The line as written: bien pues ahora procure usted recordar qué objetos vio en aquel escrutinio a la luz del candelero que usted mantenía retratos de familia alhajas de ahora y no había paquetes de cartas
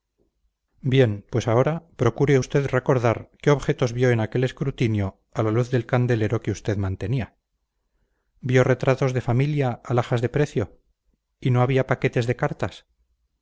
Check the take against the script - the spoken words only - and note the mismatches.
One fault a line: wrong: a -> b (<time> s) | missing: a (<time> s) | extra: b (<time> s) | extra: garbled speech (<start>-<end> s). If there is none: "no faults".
extra: vio (8.4 s)
wrong: ahora -> precio (10.3 s)